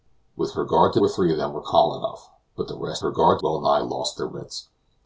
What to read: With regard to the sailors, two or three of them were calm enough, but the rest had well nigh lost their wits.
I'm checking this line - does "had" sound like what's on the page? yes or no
no